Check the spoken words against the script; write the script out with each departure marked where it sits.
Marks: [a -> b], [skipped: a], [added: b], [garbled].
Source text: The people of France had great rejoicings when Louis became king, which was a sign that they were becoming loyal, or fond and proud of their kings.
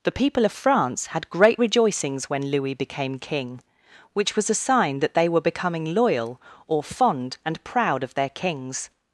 The people of France had great rejoicings when Louis became king, which was a sign that they were becoming loyal, or fond and proud of their kings.